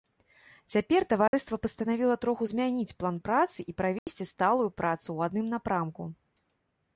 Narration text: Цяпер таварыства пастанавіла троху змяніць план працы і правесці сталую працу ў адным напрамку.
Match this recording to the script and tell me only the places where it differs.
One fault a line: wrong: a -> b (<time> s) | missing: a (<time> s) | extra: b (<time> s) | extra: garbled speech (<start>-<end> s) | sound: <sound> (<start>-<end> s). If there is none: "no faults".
sound: dropout (1.3-1.3 s)
sound: dropout (4.0-4.1 s)